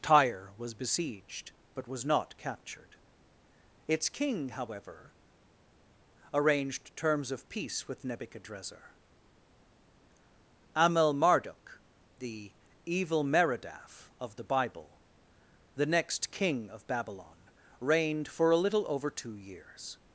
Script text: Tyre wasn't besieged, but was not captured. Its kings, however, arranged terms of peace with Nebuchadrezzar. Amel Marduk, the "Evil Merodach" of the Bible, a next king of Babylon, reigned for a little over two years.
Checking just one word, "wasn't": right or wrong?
wrong